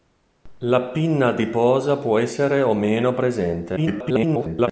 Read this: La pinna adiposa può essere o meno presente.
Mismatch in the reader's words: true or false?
true